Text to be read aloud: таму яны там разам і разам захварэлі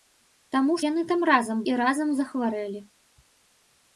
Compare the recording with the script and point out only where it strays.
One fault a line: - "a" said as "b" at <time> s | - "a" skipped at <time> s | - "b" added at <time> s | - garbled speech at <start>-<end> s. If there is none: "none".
none